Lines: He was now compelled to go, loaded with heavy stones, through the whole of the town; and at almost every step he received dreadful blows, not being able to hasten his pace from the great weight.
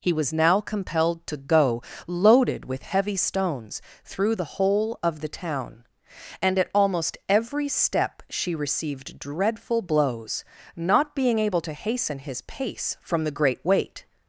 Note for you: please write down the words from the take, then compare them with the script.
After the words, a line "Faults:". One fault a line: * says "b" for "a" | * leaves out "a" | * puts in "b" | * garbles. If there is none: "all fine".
He was now compelled to go, loaded with heavy stones, through the whole of the town; and at almost every step she received dreadful blows, not being able to hasten his pace from the great weight.
Faults:
* says "she" for "he"